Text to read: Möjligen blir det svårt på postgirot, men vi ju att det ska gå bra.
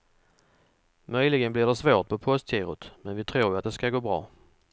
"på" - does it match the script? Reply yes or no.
yes